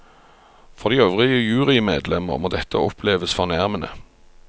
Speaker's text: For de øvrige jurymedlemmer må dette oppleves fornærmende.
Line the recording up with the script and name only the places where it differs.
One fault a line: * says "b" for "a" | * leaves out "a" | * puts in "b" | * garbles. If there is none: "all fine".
all fine